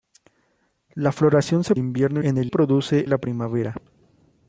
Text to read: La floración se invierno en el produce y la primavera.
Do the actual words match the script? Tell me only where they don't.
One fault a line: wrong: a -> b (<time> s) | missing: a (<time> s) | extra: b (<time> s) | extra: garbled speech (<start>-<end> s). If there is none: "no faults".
no faults